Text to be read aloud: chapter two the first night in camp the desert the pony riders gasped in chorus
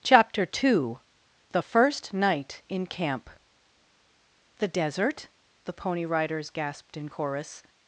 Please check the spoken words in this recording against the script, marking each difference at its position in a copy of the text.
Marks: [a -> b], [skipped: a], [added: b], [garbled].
chapter two the first night in camp the desert the pony riders gasped in chorus